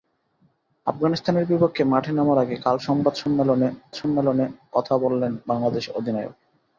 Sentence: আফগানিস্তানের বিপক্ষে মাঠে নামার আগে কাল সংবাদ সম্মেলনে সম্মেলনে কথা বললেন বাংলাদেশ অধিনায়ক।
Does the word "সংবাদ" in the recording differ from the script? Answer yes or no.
no